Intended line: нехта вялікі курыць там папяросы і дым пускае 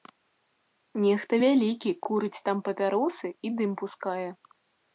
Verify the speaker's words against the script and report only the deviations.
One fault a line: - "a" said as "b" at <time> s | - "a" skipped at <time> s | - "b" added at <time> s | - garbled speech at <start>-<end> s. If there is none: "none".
none